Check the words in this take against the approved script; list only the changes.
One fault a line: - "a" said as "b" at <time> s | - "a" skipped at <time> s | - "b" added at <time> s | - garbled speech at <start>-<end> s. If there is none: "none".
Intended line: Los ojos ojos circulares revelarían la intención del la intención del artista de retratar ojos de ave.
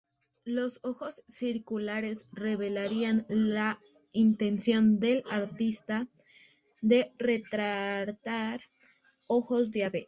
- "ojos" skipped at 1.2 s
- "la intención del" skipped at 5.2 s